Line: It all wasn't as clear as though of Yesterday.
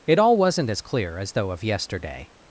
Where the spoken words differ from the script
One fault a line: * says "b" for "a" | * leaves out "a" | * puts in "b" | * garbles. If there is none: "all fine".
all fine